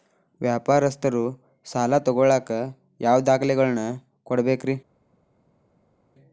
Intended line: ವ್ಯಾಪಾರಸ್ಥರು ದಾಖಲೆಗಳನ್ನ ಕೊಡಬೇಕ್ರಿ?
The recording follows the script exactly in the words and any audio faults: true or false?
false